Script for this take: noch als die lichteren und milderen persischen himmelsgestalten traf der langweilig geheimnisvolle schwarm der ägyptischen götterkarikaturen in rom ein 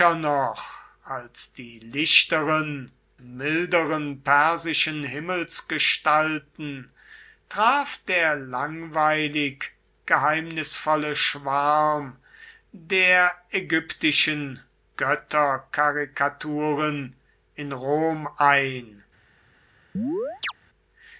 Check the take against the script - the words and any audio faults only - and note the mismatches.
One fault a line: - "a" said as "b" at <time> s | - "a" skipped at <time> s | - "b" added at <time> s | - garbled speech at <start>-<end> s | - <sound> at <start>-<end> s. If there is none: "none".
- "und" skipped at 2.9 s
- chirp at 19.9-20.5 s